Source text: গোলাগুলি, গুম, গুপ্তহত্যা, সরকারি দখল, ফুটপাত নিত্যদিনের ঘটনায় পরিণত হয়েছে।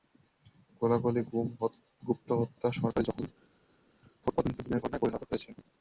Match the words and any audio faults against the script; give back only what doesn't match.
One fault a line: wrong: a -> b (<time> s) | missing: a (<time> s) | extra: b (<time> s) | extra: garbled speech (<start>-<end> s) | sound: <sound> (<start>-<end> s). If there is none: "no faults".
no faults